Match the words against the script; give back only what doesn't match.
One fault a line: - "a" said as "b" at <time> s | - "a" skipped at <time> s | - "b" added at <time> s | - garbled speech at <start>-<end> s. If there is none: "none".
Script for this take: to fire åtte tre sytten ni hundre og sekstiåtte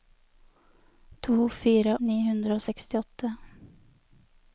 - "åtte tre sytten" skipped at 2.0 s